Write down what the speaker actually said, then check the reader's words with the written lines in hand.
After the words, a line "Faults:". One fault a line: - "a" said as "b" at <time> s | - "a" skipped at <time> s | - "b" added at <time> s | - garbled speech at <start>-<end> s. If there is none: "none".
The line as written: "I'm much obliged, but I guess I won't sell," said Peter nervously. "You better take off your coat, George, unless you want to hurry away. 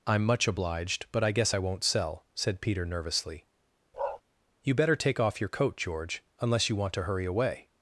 "I'm much obliged, but I guess I won't sell," said Peter nervously. "You better take off your coat, George, unless you want to hurry away.
Faults:
none